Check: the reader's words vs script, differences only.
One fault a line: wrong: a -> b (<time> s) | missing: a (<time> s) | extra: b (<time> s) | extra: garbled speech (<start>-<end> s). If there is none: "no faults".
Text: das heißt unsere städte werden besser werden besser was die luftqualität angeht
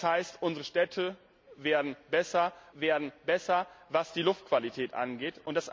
no faults